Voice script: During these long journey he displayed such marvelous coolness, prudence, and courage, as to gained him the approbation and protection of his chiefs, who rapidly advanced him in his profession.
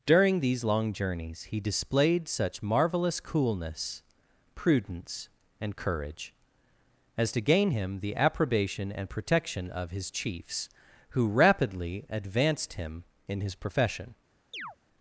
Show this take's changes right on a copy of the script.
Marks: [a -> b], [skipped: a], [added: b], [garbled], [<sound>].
During these long [journey -> journeys] he displayed such marvelous coolness, prudence, and courage, as to [gained -> gain] him the approbation and protection of his chiefs, who rapidly advanced him in his profession. [chirp]